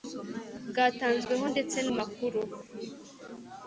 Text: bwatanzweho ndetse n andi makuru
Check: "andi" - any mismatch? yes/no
yes